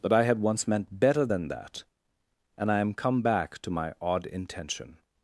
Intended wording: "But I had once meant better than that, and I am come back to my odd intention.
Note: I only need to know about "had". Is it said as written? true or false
true